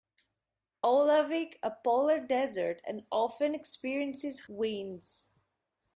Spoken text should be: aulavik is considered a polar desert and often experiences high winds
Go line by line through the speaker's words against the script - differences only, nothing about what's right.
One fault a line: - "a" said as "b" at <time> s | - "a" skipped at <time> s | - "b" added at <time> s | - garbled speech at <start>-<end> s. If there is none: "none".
- "is considered" skipped at 1.6 s
- "high" skipped at 4.4 s